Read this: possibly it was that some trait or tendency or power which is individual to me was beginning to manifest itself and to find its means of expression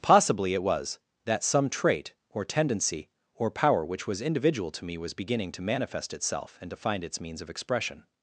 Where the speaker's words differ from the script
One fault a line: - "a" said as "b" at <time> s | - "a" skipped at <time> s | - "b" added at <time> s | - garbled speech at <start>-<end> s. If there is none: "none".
- "is" said as "was" at 4.1 s